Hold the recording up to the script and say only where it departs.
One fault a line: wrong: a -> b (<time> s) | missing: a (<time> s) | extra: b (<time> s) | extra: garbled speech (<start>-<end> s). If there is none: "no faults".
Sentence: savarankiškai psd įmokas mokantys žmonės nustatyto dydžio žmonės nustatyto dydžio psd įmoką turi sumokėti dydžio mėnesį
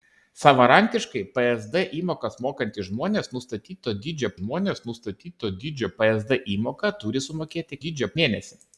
no faults